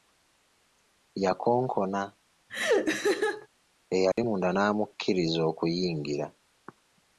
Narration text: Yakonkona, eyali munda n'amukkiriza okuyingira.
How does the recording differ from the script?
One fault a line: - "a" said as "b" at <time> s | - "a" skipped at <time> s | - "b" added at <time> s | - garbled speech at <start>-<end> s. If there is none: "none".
none